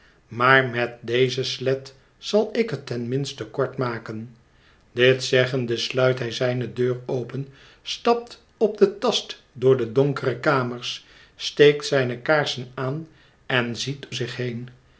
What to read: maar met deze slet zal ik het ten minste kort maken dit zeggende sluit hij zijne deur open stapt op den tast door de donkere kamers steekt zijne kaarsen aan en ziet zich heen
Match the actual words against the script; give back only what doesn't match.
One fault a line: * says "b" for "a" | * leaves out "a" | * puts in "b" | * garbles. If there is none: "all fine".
all fine